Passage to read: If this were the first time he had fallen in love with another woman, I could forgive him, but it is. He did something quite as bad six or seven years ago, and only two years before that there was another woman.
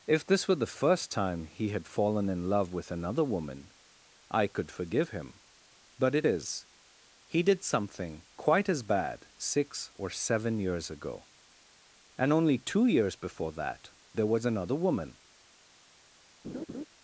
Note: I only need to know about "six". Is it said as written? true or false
true